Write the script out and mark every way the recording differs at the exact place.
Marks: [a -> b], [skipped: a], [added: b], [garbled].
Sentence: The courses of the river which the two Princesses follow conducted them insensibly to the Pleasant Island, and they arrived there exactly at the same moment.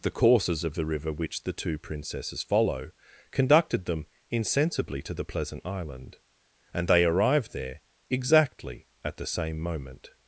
The courses of the river which the two Princesses follow conducted them insensibly to the Pleasant Island, and they arrived there exactly at the same moment.